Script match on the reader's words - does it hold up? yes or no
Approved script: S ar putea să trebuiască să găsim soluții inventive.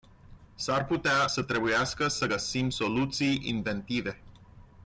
yes